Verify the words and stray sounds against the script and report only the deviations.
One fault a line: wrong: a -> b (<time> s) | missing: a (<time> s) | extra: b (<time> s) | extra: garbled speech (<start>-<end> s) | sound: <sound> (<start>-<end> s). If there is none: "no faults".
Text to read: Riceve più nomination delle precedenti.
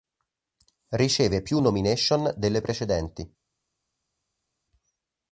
no faults